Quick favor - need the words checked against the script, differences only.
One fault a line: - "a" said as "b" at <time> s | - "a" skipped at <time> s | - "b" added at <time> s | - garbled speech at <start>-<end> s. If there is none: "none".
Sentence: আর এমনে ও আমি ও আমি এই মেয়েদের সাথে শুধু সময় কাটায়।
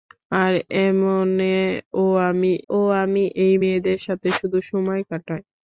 none